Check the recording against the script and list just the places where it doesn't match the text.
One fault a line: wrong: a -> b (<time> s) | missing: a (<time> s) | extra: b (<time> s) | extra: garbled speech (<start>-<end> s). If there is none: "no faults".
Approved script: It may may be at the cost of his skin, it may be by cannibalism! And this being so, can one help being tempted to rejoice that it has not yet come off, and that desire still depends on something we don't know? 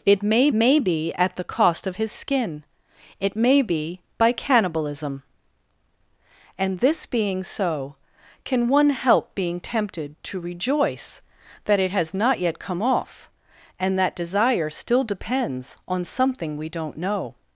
no faults